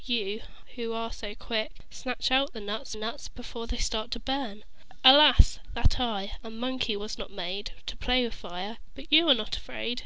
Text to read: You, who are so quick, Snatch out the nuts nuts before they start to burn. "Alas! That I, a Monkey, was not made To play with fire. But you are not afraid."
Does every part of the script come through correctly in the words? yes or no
yes